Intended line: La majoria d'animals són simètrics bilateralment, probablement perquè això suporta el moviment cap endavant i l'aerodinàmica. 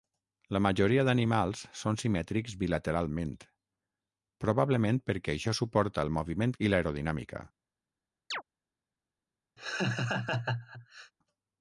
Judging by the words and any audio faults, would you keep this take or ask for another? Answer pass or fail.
fail